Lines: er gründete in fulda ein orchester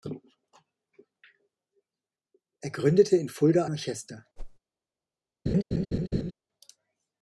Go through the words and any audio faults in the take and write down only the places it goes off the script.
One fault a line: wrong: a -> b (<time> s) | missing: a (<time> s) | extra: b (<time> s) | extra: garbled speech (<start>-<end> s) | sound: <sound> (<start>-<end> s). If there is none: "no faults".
missing: ein (3.6 s)
sound: whoosh (4.4-4.6 s)
sound: laugh (5.5-6.3 s)